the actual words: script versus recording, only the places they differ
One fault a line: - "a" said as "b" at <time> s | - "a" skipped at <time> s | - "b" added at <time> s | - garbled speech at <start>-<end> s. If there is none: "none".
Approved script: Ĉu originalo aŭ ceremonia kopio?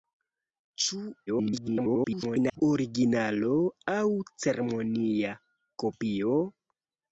- garbled speech at 1.3-2.6 s